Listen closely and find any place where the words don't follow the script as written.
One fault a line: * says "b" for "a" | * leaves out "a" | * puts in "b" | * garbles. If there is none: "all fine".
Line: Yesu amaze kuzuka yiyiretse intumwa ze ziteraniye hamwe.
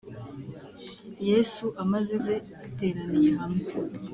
* leaves out "kuzuka yiyiretse intumwa"